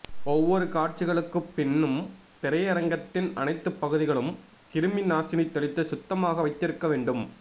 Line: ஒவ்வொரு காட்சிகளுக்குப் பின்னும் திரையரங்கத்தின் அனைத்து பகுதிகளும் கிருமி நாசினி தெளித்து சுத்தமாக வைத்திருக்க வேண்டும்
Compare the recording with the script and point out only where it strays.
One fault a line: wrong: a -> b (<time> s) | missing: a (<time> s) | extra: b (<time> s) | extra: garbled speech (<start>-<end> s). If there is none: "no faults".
no faults